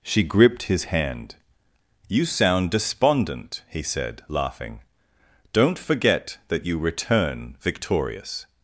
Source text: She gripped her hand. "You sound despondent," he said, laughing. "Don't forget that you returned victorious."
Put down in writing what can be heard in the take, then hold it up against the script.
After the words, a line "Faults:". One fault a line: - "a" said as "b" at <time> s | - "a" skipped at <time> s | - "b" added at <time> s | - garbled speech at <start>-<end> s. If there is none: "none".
She gripped his hand. "You sound despondent," he said, laughing. "Don't forget that you return victorious."
Faults:
- "her" said as "his" at 0.6 s
- "returned" said as "return" at 6.8 s